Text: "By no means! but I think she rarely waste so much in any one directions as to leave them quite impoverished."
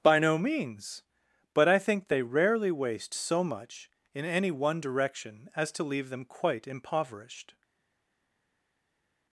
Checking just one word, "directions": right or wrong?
wrong